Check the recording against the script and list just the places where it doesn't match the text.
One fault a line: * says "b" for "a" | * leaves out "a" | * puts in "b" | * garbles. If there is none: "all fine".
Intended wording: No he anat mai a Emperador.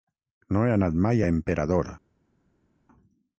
all fine